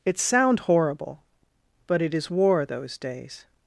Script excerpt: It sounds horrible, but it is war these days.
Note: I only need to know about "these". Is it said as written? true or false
false